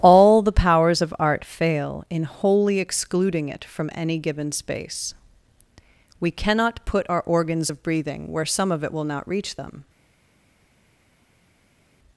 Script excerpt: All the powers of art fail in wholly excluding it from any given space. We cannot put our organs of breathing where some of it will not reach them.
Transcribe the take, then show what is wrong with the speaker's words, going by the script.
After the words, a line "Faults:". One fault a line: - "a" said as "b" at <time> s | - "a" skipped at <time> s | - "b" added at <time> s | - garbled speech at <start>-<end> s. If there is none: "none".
All the powers of art fail in wholly excluding it from any given space. We cannot put our organs of breathing where some of it will not reach them.
Faults:
none